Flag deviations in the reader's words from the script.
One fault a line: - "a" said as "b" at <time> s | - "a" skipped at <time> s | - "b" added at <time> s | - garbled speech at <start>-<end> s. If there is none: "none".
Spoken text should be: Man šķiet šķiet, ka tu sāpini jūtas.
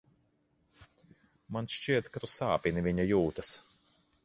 - "šķiet" skipped at 2.1 s
- "viņa" added at 2.9 s